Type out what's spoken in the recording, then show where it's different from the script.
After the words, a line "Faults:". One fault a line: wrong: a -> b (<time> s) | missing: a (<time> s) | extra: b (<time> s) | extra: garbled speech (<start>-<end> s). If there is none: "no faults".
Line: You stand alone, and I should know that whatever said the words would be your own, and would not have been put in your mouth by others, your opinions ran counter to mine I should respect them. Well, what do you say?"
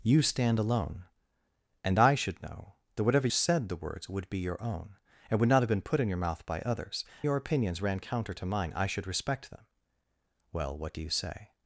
You stand alone, and I should know that whatever said the words would be your own, and would not have been put in your mouth by others, your opinions ran counter to mine I should respect them. Well, what do you say?"
Faults:
no faults